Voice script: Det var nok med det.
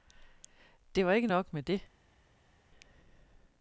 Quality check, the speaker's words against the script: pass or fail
fail